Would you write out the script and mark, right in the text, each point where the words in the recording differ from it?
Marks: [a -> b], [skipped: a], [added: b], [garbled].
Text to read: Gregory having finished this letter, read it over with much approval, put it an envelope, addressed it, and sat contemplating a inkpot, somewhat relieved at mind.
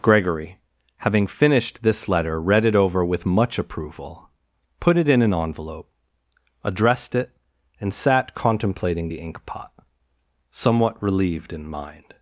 Gregory having finished this letter, read it over with much approval, put it [added: in] an envelope, addressed it, and sat contemplating [a -> the] inkpot, somewhat relieved [at -> in] mind.